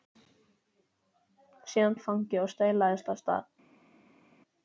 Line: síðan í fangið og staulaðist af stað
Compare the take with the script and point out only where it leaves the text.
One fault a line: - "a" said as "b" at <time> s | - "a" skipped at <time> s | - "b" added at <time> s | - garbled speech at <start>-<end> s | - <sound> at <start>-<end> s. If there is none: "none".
none